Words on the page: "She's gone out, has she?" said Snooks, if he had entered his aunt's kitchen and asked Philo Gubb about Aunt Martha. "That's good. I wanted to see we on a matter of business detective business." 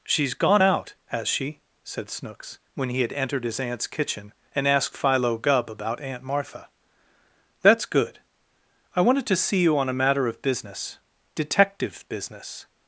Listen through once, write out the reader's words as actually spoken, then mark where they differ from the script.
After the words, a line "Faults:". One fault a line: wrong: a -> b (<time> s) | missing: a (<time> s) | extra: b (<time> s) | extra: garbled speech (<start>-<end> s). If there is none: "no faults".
"She's gone out, has she?" said Snooks, when he had entered his aunt's kitchen and asked Philo Gubb about Aunt Martha. "That's good. I wanted to see you on a matter of business detective business."
Faults:
wrong: if -> when (2.7 s)
wrong: we -> you (9.6 s)